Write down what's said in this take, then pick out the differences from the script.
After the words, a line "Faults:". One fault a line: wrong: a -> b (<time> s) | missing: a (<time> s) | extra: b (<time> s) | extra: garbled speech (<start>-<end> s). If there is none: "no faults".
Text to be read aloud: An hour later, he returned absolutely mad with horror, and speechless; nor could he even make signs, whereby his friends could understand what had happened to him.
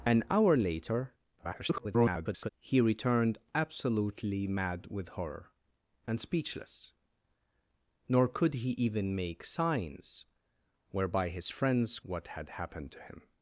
An hour later, [garbled] he returned absolutely mad with horror, and speechless; nor could he even make signs, whereby his friends what had happened to him.
Faults:
extra: garbled speech (1.4-2.5 s)
missing: could understand (12.0 s)